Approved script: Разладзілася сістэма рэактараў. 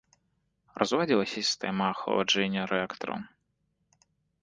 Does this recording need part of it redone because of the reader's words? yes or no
yes